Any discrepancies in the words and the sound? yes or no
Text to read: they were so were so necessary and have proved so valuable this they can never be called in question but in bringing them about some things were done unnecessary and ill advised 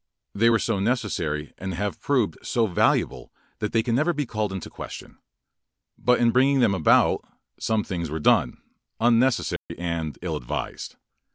yes